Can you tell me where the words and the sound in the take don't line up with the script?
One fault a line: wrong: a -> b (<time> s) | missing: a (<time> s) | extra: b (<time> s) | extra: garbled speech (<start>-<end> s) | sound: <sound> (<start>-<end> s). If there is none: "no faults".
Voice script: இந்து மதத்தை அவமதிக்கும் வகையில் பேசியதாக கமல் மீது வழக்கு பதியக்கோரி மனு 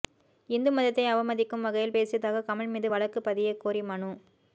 no faults